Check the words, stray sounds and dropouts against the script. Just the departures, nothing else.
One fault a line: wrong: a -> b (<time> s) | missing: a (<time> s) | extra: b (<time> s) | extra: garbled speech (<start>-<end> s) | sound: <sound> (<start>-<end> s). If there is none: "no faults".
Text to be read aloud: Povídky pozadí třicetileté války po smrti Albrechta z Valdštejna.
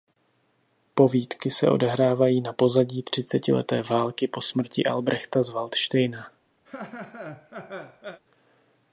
extra: se odehrávají na (1.5 s)
sound: laugh (6.7-8.2 s)